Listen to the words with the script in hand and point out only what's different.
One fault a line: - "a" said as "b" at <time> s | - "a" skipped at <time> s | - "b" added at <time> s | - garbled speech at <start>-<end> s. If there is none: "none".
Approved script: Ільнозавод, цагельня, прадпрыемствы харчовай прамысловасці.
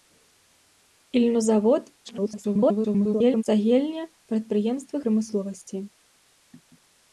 - garbled speech at 2.0-3.4 s
- "харчовай" skipped at 5.0 s